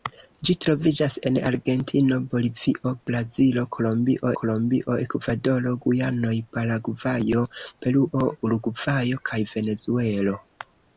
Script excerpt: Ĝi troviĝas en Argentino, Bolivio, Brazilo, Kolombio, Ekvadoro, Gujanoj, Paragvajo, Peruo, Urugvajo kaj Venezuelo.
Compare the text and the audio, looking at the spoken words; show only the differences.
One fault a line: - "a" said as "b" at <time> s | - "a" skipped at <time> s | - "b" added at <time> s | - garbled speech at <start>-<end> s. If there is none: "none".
- "Kolombio" added at 4.4 s